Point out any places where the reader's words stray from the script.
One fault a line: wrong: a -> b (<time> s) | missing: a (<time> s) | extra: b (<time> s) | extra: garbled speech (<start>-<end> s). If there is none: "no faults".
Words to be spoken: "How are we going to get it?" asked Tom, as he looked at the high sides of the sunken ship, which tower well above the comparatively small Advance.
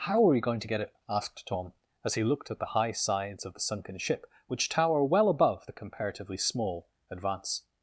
no faults